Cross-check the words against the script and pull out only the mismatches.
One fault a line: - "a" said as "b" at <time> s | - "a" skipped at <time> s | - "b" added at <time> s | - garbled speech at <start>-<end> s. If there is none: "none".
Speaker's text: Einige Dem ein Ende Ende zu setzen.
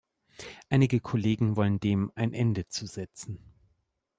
- "Kollegen wollen" added at 1.0 s
- "Ende" skipped at 2.7 s